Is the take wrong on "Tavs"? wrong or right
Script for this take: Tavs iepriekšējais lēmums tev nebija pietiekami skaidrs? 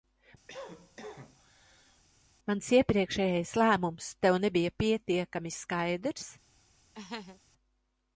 wrong